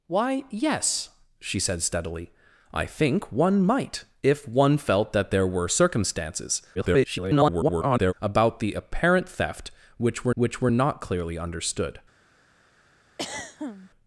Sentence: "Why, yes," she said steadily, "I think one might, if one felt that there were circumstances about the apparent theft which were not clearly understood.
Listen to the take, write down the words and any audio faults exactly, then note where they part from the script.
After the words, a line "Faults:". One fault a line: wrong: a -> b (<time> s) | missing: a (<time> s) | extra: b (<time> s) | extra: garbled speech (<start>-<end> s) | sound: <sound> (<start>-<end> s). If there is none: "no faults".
"Why, yes," she said steadily, "I think one might, if one felt that there were circumstances [garbled] about the apparent theft which were which were not clearly understood.
Faults:
extra: garbled speech (6.7-8.1 s)
extra: which were (10.3 s)
sound: throat clearing (13.2-13.9 s)